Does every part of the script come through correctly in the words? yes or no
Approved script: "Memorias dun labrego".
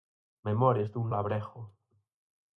yes